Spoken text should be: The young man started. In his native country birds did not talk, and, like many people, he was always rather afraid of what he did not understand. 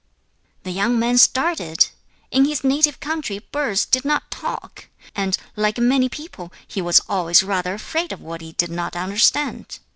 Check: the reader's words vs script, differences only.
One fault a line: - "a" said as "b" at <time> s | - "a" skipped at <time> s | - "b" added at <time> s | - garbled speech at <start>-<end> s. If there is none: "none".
none